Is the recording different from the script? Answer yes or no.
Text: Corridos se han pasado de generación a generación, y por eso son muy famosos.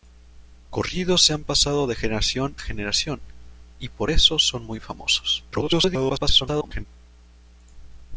yes